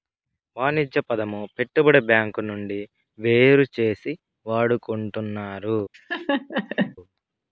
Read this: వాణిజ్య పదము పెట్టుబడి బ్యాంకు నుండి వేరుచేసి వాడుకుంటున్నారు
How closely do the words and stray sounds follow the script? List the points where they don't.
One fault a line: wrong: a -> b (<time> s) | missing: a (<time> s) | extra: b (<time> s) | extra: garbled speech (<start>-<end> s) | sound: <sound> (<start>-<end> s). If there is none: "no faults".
sound: laugh (5.9-7.0 s)